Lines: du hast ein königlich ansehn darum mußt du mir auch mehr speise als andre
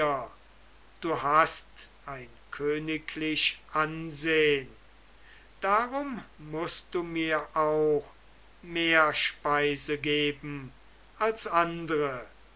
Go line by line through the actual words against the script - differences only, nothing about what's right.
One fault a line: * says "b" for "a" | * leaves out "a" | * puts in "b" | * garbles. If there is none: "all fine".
* puts in "geben"